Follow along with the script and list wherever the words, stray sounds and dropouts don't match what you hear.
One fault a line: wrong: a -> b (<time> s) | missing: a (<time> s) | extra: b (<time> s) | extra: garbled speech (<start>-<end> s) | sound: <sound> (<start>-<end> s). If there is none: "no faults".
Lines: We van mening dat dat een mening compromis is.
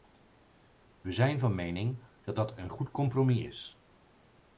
extra: zijn (1.1 s)
wrong: mening -> goed (2.7 s)